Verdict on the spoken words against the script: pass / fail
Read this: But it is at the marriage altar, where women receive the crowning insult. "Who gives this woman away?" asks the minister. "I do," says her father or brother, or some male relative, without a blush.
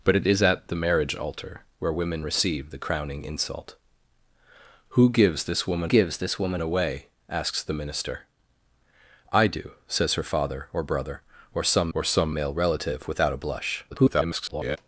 fail